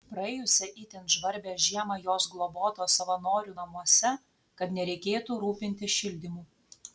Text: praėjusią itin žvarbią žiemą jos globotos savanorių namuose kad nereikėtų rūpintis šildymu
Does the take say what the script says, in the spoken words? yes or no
yes